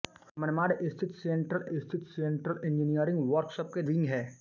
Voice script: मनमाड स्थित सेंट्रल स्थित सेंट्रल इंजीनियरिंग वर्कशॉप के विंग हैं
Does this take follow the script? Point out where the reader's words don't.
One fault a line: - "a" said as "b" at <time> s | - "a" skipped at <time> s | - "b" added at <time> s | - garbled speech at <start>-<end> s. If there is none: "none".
none